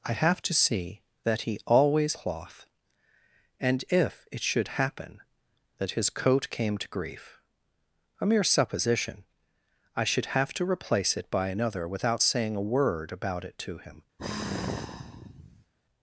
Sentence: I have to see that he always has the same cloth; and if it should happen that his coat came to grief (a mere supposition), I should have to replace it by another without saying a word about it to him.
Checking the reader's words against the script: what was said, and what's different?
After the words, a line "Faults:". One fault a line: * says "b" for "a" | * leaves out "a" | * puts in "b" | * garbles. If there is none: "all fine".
I have to see that he always cloth; and if it should happen that his coat came to grief (a mere supposition), I should have to replace it by another without saying a word about it to him.
Faults:
* leaves out "has the same"